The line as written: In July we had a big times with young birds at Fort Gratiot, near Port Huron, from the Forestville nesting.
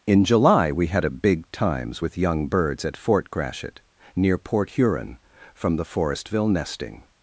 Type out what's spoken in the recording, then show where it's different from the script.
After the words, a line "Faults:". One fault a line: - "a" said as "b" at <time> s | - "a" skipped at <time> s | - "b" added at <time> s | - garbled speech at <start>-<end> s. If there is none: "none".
In July we had a big times with young birds at Fort Gratiot, near Port Huron, from the Forestville nesting.
Faults:
none